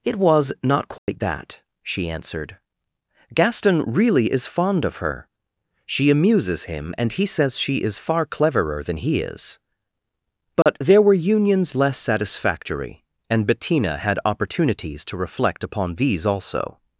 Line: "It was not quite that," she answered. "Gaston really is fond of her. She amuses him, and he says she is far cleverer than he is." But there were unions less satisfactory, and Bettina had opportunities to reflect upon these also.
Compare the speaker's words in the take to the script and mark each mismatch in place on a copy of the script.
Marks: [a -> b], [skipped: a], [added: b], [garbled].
"It was not quite that," she answered. "Gaston really is fond of her. She amuses him, and he says she is far cleverer than he is." But there were unions less satisfactory, and Bettina had opportunities to reflect upon these also.